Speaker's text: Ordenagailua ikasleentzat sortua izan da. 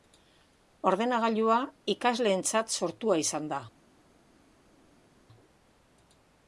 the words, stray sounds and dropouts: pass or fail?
pass